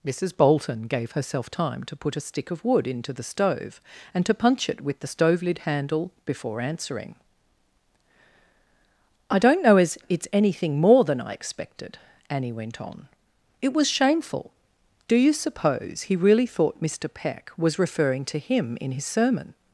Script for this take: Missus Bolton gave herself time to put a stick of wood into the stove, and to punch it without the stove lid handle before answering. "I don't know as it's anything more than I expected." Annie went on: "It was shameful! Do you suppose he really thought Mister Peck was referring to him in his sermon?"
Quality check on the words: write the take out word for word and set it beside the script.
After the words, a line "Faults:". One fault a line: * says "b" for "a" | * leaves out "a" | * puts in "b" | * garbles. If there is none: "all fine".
Missus Bolton gave herself time to put a stick of wood into the stove, and to punch it with the stove lid handle before answering. "I don't know as it's anything more than I expected." Annie went on: "It was shameful! Do you suppose he really thought Mister Peck was referring to him in his sermon?"
Faults:
* says "with" for "without"